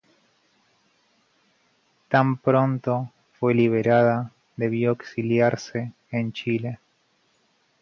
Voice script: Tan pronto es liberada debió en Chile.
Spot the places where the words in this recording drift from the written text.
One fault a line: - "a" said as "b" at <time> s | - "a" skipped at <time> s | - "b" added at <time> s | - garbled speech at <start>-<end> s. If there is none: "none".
- "es" said as "fue" at 3.4 s
- "exiliarse" added at 4.9 s